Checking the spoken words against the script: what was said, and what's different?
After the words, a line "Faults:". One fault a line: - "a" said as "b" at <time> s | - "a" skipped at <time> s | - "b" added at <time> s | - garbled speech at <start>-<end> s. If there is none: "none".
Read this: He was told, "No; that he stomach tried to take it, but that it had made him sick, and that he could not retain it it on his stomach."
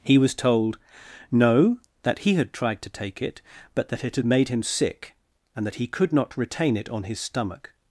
He was told, "No; that he had tried to take it, but that it had made him sick, and that he could not retain it on his stomach."
Faults:
- "stomach" said as "had" at 2.3 s
- "it" skipped at 6.9 s